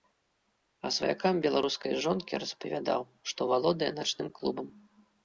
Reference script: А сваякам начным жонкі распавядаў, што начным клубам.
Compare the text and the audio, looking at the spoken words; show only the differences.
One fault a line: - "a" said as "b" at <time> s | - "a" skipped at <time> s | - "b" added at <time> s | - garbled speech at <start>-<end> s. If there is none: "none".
- "начным" said as "беларускай" at 1.5 s
- "валодае" added at 3.5 s